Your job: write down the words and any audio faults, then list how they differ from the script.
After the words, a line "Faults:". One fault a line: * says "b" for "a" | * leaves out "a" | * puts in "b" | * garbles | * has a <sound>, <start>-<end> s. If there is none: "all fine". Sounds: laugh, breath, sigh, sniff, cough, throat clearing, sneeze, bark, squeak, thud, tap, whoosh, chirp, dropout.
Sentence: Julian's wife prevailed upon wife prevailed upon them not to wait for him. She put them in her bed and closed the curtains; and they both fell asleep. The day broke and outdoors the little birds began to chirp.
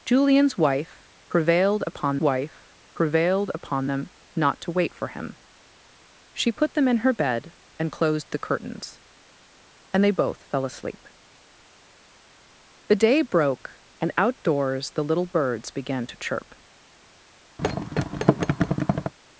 Julian's wife prevailed upon wife prevailed upon them not to wait for him. She put them in her bed and closed the curtains; and they both fell asleep. The day broke and outdoors the little birds began to chirp.
Faults:
* has a thud, 17.6-19.1 s